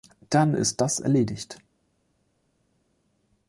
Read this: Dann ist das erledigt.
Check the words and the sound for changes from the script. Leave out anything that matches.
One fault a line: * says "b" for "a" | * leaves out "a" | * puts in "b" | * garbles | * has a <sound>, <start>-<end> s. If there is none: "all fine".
all fine